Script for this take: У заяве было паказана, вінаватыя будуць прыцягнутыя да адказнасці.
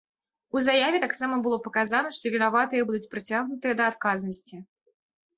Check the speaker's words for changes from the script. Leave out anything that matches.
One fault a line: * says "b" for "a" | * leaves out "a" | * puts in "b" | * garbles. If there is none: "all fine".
* puts in "таксама"
* puts in "што"